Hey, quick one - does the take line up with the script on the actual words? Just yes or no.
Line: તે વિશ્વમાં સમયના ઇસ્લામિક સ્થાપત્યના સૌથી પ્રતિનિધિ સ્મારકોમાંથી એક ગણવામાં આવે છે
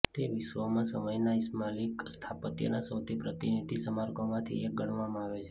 yes